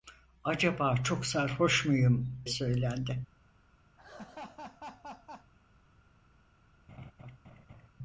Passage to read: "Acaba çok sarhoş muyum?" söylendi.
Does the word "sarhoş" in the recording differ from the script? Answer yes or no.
no